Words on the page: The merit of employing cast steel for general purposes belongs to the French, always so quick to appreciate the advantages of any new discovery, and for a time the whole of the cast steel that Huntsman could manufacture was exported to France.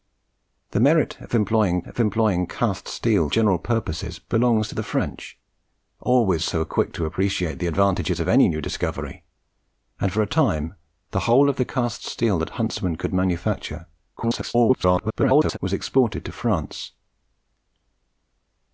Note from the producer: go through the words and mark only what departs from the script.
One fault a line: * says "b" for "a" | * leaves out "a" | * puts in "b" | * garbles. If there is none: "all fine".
* puts in "of employing"
* leaves out "for"
* garbles